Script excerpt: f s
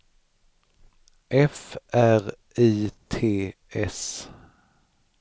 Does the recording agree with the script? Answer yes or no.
no